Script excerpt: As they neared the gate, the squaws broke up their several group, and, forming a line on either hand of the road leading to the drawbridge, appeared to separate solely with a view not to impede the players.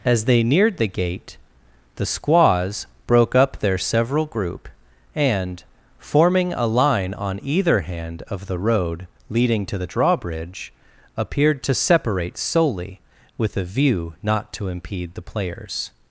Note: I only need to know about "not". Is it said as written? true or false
true